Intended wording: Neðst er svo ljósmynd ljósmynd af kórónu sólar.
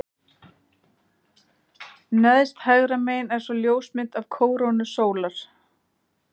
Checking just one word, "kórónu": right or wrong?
right